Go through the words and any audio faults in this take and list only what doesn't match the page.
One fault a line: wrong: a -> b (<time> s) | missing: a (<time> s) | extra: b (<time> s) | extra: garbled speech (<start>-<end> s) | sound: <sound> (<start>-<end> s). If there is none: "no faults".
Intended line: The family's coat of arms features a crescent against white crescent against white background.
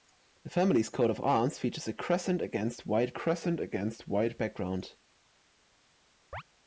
sound: chirp (6.3-6.4 s)